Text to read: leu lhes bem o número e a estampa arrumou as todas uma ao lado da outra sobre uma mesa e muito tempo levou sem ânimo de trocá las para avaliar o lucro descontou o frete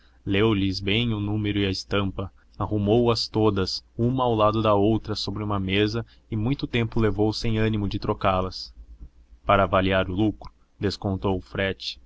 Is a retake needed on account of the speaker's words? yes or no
no